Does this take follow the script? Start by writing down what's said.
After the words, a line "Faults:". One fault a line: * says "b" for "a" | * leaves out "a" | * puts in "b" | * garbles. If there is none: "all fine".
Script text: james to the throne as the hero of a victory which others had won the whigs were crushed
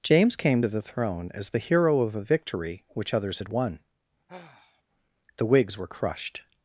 james came to the throne as the hero of a victory which others had won the whigs were crushed
Faults:
* puts in "came"